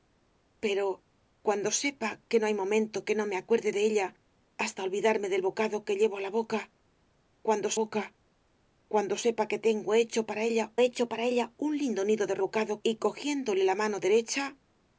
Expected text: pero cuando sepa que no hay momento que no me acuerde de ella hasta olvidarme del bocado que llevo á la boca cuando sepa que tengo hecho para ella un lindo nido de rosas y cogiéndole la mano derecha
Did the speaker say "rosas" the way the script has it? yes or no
no